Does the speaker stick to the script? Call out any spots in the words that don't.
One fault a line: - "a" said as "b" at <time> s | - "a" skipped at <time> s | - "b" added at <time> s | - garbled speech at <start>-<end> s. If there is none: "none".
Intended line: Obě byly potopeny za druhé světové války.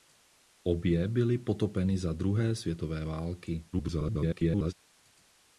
- garbled speech at 3.7-4.7 s